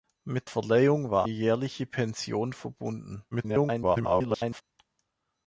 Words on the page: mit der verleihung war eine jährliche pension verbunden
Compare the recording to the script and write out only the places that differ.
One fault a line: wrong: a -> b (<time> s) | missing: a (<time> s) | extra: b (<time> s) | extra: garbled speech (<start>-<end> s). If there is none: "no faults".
missing: der (0.5 s)
missing: eine (1.3 s)
extra: garbled speech (3.3-4.6 s)